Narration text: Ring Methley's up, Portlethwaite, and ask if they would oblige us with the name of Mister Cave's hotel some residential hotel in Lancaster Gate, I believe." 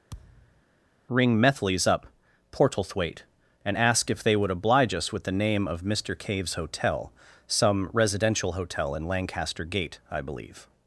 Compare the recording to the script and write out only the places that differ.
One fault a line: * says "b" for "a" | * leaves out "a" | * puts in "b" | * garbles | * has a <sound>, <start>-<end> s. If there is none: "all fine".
* has a thud, 0.1-0.6 s